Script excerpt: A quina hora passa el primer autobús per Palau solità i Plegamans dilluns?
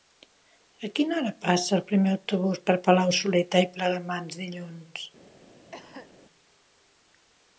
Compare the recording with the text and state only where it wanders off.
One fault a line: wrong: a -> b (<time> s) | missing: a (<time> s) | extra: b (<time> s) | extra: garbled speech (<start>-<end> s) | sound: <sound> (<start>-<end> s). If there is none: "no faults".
sound: cough (5.7-6.2 s)